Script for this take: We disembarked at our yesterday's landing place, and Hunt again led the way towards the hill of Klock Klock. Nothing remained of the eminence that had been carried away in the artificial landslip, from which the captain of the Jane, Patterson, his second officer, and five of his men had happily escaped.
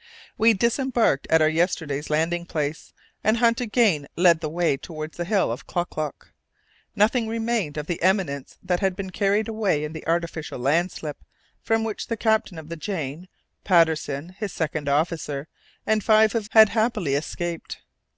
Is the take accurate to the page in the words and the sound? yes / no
no